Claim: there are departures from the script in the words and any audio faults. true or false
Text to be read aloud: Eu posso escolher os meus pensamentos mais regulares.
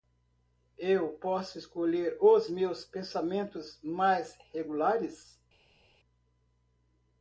false